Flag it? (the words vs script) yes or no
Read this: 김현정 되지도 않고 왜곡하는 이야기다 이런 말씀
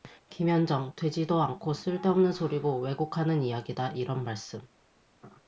yes